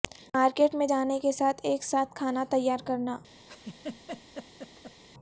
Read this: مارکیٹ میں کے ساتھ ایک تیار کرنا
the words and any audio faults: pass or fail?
fail